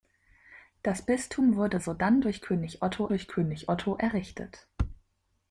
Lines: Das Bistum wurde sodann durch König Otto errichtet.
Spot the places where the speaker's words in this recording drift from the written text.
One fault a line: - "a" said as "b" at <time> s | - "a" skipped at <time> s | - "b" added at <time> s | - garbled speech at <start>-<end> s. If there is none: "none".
- "durch König Otto" added at 3.1 s